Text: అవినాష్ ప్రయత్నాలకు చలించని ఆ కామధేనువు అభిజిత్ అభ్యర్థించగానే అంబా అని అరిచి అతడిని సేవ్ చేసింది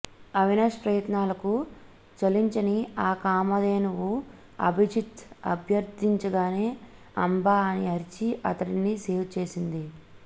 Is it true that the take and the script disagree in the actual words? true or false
false